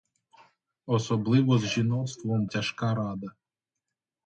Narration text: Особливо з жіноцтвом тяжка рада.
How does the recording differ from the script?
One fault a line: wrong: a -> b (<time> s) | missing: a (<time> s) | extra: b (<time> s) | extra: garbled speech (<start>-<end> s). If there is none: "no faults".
no faults